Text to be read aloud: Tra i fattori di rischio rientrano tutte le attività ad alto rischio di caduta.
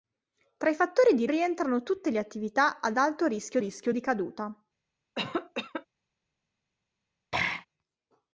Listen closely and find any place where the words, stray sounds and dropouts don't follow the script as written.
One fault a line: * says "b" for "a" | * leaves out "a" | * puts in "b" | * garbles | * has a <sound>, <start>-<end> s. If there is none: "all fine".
* leaves out "rischio"
* puts in "rischio"
* has a cough, 5.2-5.9 s
* has a throat clearing, 7.3-7.7 s